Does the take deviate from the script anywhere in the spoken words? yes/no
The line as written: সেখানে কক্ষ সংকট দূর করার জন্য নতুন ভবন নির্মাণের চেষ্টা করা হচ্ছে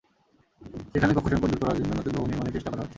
no